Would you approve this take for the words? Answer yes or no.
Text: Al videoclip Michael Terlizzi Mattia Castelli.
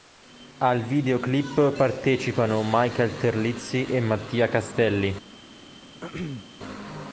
no